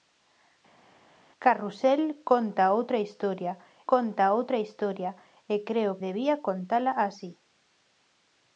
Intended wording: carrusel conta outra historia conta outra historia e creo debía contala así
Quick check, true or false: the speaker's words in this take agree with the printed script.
true